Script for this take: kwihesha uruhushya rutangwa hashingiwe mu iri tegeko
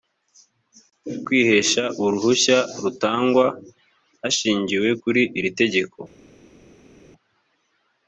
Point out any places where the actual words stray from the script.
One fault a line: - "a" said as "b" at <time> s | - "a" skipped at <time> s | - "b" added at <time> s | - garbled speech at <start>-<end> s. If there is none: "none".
- "mu" said as "kuri" at 5.0 s